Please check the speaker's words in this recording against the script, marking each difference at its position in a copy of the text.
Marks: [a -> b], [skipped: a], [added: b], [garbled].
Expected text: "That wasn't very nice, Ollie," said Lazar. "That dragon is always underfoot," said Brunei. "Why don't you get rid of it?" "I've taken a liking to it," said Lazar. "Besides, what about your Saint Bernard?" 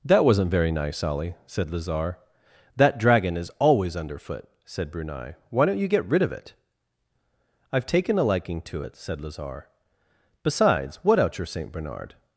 "That wasn't very nice, Ollie," said Lazar. "That dragon is always underfoot," said Brunei. "Why don't you get rid of it?" "I've taken a liking to it," said Lazar. "Besides, what [about -> out] your Saint Bernard?"